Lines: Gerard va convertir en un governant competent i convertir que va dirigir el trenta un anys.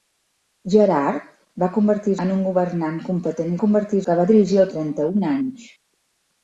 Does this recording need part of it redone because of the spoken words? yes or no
no